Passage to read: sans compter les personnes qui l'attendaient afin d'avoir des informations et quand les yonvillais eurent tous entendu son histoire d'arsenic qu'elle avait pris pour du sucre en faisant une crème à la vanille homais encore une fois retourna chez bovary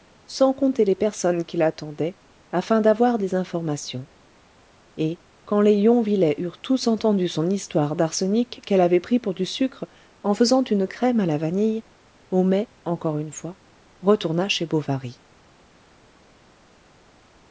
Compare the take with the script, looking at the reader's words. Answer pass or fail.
pass